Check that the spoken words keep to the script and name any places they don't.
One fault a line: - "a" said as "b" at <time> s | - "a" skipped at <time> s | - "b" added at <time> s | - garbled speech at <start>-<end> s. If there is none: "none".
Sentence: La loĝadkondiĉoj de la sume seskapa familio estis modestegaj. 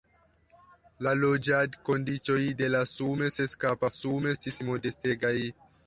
- "familio" said as "sume" at 4.0 s